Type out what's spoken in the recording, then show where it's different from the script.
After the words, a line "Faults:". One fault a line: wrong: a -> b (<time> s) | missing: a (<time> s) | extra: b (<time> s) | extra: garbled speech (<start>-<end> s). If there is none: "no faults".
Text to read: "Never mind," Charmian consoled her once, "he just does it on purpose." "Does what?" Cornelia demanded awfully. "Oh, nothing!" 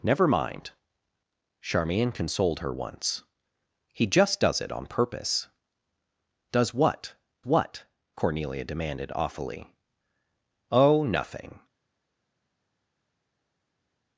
"Never mind," Charmian consoled her once, "he just does it on purpose." "Does what what?" Cornelia demanded awfully. "Oh, nothing!"
Faults:
extra: what (7.4 s)